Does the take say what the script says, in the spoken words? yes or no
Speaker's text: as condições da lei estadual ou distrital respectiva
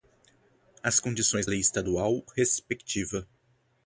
no